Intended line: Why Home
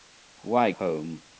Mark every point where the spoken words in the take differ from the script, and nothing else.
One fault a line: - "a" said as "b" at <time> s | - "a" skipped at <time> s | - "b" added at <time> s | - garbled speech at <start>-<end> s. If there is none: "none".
none